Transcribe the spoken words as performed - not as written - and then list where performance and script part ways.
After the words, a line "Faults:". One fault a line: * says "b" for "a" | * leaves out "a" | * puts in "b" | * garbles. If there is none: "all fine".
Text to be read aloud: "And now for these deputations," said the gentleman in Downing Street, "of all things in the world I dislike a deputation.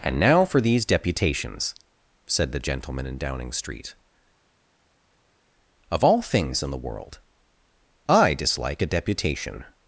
"And now for these deputations," said the gentleman in Downing Street, "of all things in the world I dislike a deputation.
Faults:
all fine